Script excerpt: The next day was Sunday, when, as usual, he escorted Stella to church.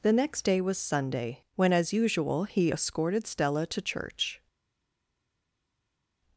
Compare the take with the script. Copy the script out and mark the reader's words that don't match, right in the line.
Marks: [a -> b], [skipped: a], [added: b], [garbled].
The next day was Sunday, when, as usual, he escorted Stella to church.